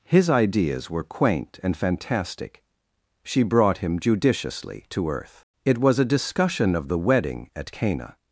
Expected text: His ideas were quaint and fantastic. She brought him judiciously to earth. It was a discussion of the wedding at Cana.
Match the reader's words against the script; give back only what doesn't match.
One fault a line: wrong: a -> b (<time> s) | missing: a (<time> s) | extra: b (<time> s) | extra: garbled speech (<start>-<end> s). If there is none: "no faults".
no faults